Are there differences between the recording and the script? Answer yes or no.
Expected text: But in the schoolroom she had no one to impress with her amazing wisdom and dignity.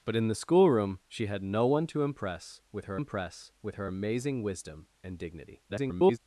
yes